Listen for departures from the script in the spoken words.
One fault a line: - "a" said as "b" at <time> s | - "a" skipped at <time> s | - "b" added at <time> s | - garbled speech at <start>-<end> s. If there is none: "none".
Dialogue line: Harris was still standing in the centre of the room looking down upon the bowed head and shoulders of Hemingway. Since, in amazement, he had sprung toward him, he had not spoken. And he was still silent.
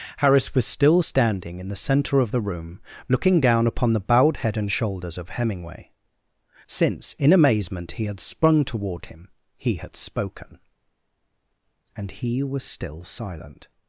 - "not" skipped at 10.0 s